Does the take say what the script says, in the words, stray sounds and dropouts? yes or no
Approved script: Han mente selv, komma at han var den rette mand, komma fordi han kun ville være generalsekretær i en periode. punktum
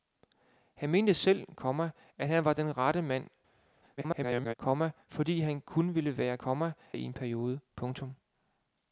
no